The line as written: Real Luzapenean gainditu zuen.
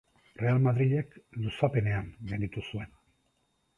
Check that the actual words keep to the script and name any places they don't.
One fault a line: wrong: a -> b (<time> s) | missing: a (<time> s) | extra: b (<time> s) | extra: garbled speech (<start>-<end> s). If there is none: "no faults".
extra: Madrilek (0.7 s)